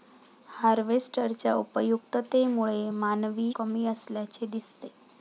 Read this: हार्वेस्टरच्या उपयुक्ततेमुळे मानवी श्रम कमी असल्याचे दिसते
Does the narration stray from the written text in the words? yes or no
yes